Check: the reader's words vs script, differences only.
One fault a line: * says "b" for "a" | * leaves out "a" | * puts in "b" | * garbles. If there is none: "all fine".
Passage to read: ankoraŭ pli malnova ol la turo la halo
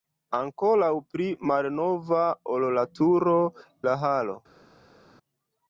all fine